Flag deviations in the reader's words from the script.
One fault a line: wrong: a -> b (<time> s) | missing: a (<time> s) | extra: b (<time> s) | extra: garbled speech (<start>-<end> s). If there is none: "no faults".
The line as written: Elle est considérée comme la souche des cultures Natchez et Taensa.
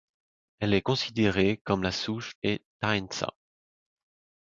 missing: des cultures Natchez (2.3 s)